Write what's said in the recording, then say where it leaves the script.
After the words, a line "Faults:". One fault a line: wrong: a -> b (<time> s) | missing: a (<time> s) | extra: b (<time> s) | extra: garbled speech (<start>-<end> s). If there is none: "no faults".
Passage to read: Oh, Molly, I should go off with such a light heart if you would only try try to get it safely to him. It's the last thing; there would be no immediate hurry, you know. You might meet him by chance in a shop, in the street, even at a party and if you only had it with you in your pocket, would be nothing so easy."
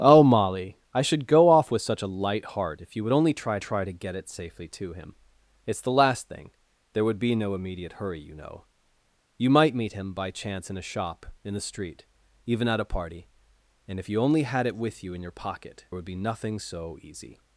Oh, Molly, I should go off with such a light heart if you would only try try to get it safely to him. It's the last thing; there would be no immediate hurry, you know. You might meet him by chance in a shop, in the street, even at a party and if you only had it with you in your pocket, would be nothing so easy."
Faults:
no faults